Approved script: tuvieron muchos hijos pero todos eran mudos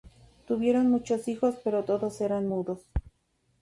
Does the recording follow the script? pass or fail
pass